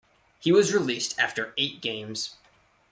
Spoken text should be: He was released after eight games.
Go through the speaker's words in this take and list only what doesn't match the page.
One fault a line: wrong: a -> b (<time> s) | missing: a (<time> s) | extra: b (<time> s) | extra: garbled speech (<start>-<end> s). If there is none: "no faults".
no faults